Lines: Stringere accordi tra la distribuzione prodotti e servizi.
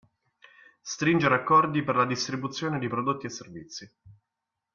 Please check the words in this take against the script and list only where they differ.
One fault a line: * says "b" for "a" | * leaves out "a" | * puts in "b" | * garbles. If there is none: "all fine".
* says "per" for "tra"
* puts in "di"